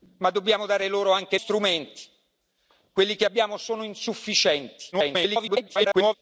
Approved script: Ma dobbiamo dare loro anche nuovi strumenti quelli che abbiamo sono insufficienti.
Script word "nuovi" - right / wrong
wrong